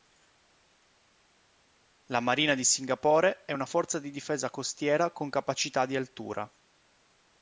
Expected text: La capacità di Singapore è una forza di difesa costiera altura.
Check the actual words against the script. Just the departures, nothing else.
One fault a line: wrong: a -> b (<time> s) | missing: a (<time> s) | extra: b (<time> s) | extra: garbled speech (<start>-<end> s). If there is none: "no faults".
wrong: capacità -> marina (2.2 s)
extra: con capacità di (5.1 s)